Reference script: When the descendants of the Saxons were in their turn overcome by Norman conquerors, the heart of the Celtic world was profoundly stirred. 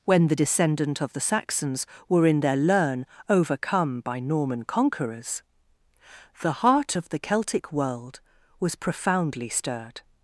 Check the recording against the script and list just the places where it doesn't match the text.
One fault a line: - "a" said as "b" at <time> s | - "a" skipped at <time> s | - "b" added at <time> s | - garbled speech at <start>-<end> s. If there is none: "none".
- "descendants" said as "descendant" at 0.3 s
- "turn" said as "learn" at 2.5 s